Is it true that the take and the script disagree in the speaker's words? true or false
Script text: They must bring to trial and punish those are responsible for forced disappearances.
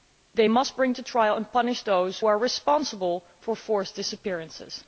false